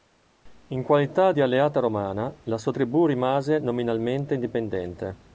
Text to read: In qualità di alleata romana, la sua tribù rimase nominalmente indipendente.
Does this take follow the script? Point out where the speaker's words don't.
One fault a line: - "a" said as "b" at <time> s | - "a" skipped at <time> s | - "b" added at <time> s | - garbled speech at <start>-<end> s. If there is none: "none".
none